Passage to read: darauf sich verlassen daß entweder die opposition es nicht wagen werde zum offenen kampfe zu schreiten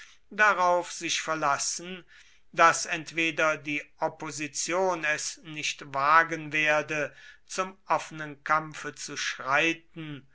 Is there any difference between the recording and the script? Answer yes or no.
no